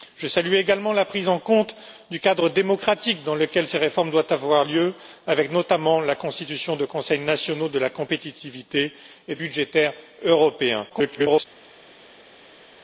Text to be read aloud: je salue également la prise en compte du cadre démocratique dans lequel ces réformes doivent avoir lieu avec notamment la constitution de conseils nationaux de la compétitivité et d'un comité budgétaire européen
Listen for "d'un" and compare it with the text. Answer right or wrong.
wrong